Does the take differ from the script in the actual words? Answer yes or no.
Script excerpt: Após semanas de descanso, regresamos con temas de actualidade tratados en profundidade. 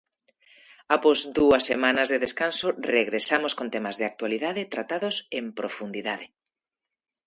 yes